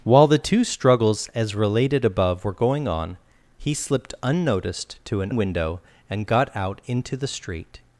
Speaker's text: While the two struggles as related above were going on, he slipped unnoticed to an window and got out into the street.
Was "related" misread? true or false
false